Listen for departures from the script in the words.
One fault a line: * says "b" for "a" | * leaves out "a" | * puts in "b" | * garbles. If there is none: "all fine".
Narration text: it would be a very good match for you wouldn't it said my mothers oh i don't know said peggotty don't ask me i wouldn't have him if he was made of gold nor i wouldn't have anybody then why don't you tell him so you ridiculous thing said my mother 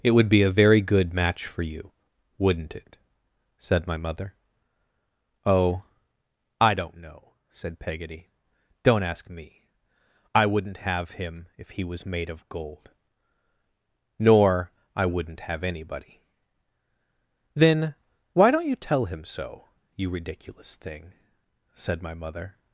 * says "mother" for "mothers"